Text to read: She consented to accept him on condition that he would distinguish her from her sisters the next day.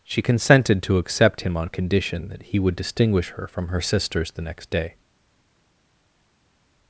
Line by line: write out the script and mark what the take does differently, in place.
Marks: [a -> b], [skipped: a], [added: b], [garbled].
She consented to accept him on condition that he would distinguish her from her sisters the next day.